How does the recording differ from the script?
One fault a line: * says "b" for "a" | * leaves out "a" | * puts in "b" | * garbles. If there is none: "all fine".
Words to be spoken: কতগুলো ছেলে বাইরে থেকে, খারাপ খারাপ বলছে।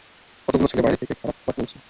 all fine